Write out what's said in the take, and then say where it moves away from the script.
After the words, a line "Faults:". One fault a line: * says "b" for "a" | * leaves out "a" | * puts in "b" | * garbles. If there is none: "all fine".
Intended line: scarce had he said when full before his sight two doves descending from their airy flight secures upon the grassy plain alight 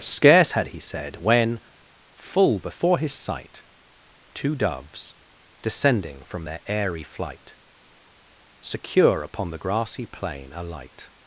scarce had he said when full before his sight two doves descending from their airy flight secure upon the grassy plain alight
Faults:
* says "secure" for "secures"